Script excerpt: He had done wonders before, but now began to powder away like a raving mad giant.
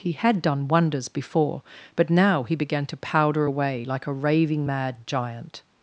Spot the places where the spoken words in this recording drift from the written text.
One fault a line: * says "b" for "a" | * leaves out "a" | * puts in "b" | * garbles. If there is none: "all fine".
* puts in "he"